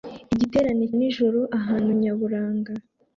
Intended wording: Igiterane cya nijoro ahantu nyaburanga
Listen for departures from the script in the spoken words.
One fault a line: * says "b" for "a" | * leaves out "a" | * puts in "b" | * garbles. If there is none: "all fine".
* leaves out "cya"